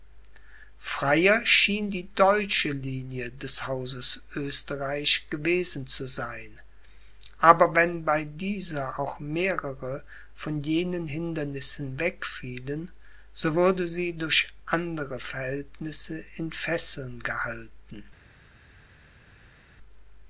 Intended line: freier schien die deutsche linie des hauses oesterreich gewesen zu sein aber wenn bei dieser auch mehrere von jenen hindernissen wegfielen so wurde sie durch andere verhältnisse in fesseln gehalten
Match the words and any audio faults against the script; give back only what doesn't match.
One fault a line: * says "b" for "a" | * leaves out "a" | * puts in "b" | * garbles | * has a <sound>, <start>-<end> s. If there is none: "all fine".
all fine